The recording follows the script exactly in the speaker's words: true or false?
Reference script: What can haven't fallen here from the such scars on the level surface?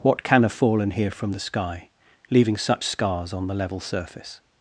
false